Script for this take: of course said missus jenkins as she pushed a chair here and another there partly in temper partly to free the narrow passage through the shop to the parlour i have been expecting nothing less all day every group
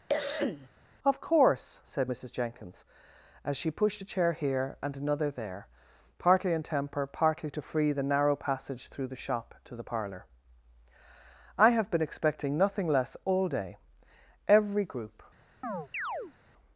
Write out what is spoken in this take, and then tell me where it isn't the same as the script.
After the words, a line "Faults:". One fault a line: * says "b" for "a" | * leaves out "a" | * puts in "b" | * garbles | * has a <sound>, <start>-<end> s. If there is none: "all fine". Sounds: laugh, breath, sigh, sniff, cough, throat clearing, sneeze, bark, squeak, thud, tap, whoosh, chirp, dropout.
of course said missus jenkins as she pushed a chair here and another there partly in temper partly to free the narrow passage through the shop to the parlour i have been expecting nothing less all day every group
Faults:
* has a cough, 0.1-0.7 s
* has a chirp, 15.6-16.3 s